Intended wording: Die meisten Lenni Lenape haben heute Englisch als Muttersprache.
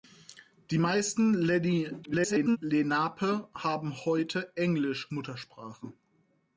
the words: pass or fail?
fail